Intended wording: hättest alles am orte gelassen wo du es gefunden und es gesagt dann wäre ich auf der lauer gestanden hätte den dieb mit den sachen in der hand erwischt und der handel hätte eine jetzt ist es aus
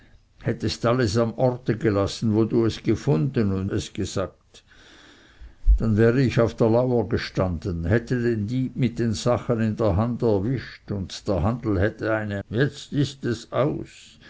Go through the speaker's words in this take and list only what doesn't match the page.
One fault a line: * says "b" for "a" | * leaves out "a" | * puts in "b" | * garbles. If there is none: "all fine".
all fine